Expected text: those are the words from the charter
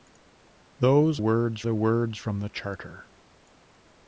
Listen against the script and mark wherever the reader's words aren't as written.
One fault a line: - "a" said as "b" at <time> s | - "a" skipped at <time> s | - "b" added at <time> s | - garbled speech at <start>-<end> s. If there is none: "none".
- "are" said as "words" at 1.2 s